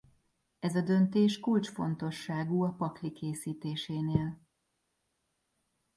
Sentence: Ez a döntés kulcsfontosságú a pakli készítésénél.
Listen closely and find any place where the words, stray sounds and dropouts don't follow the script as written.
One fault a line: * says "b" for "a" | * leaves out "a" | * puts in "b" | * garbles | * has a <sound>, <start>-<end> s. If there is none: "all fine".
all fine